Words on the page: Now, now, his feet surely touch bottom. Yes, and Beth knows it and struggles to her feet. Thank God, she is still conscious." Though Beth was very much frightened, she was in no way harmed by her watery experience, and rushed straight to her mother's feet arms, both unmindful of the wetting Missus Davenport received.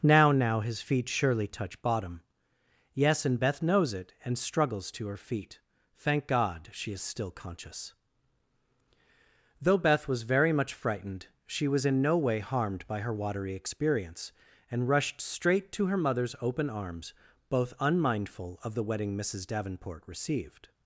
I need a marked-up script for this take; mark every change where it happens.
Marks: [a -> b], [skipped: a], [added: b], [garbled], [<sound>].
Now, now, his feet surely touch bottom. Yes, and Beth knows it and struggles to her feet. Thank God, she is still conscious." Though Beth was very much frightened, she was in no way harmed by her watery experience, and rushed straight to her mother's [feet -> open] arms, both unmindful of the wetting Missus Davenport received.